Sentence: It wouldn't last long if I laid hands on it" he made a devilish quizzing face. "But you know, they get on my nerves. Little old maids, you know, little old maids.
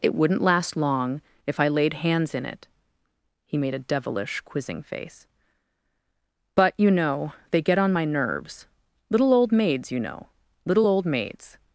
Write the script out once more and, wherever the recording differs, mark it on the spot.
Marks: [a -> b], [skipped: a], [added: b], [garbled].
It wouldn't last long if I laid hands [on -> in] it" he made a devilish quizzing face. "But you know, they get on my nerves. Little old maids, you know, little old maids.